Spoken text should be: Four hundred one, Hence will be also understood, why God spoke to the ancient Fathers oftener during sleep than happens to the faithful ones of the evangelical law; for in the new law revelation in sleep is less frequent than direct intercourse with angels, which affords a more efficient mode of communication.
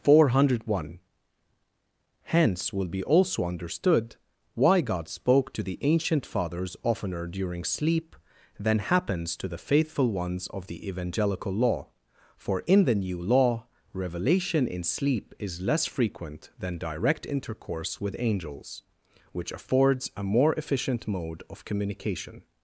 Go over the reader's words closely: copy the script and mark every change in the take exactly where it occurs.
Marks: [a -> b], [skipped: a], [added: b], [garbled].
Four hundred one, Hence will be also understood, why God spoke to the ancient Fathers oftener during sleep than happens to the faithful ones of the evangelical law; for in the new law revelation in sleep is less frequent than direct intercourse with angels, which affords a more efficient mode of communication.